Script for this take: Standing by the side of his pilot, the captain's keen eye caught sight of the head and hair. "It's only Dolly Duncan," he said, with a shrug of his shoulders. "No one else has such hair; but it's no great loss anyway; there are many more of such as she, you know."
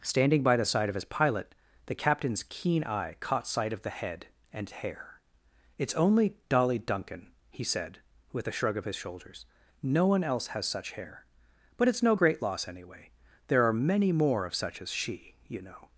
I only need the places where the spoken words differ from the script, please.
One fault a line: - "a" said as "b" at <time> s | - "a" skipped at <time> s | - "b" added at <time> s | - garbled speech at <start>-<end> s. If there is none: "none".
none